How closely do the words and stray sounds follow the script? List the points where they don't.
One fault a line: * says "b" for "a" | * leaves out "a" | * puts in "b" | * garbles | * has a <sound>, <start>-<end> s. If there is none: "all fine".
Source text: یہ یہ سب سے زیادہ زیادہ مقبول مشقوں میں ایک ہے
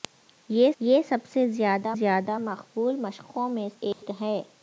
* has a dropout, 3.9-4.0 s